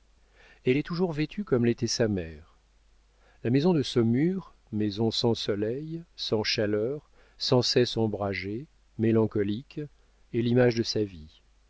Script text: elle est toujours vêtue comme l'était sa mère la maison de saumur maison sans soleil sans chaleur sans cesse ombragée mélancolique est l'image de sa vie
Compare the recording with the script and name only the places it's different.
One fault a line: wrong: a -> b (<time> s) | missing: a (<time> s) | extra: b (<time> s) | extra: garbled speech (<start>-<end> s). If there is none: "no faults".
no faults